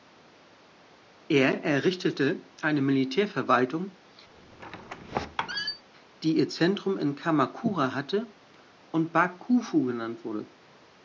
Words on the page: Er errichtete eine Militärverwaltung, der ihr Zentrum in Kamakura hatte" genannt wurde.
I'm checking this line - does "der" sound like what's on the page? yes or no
no